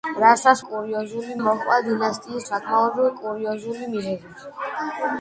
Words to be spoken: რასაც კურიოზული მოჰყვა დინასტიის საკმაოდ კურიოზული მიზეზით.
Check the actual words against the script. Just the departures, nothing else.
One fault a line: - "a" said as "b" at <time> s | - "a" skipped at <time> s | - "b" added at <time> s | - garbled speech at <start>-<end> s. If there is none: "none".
none